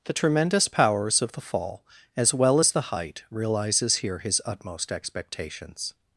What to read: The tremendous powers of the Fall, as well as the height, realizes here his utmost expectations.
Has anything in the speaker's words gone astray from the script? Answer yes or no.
no